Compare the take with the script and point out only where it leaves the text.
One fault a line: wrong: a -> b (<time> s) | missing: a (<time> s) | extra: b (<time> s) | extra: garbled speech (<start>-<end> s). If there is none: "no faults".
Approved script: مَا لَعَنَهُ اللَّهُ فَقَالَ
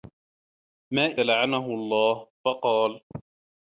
no faults